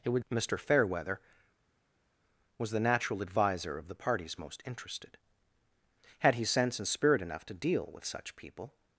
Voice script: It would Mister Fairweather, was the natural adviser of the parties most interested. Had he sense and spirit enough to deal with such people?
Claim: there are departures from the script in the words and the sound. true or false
false